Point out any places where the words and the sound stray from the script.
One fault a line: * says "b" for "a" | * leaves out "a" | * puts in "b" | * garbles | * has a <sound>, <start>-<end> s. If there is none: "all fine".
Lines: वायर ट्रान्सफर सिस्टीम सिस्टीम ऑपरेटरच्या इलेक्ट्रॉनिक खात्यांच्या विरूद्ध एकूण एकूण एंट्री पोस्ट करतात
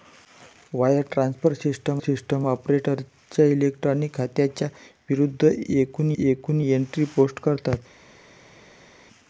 all fine